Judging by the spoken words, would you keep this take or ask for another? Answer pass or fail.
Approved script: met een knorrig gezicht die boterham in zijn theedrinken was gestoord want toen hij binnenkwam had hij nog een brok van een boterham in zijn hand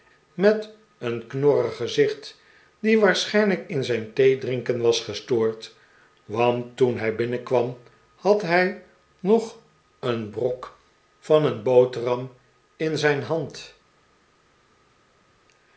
fail